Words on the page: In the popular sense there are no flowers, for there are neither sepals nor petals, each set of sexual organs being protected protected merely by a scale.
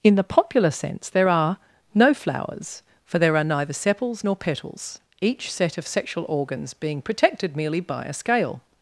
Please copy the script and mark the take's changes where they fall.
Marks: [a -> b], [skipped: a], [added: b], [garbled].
In the popular sense there are no flowers, for there are neither sepals nor petals, each set of sexual organs being protected [skipped: protected] merely by a scale.